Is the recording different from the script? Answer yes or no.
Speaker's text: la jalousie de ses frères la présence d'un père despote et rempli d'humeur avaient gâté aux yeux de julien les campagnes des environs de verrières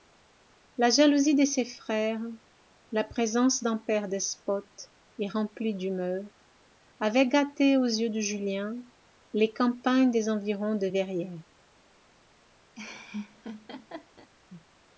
no